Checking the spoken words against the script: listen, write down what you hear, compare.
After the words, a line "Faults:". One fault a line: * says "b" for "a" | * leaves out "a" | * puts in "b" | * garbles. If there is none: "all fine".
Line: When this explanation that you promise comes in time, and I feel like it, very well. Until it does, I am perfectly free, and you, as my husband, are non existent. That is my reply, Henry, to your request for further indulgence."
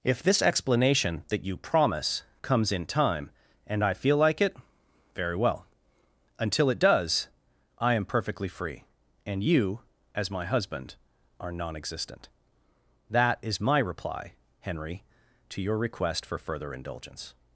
If this explanation that you promise comes in time, and I feel like it, very well. Until it does, I am perfectly free, and you, as my husband, are non existent. That is my reply, Henry, to your request for further indulgence."
Faults:
* says "If" for "When"